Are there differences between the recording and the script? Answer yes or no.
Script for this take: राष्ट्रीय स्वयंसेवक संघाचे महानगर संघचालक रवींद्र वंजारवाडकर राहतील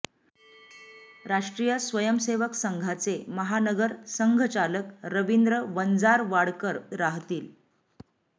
no